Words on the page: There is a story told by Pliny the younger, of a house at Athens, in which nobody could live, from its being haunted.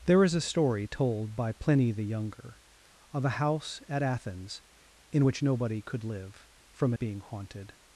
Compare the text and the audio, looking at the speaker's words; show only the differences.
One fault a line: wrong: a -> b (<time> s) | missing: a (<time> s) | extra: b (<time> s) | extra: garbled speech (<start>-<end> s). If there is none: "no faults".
missing: its (6.9 s)